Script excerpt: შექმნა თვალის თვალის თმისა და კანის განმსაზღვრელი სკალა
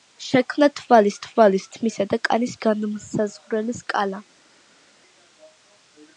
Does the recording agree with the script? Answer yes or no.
yes